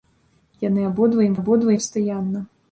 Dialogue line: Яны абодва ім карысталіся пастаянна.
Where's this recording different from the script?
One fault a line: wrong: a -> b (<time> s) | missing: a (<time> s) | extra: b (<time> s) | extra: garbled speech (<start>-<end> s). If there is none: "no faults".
wrong: карысталіся -> абодва (1.4 s)